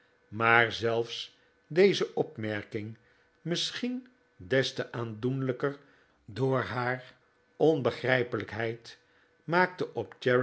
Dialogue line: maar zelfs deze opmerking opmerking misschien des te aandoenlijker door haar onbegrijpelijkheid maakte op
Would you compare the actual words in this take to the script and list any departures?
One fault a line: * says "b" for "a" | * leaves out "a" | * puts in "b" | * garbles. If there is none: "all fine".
* leaves out "opmerking"